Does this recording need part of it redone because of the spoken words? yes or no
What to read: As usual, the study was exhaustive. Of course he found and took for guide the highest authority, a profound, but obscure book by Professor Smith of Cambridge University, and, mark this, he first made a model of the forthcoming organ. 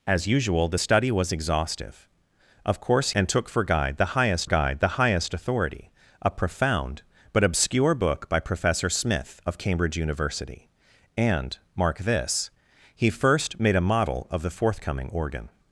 yes